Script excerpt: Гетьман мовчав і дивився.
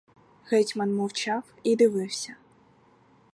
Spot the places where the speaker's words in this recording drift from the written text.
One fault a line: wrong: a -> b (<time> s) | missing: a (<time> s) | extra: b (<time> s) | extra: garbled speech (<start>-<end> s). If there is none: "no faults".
no faults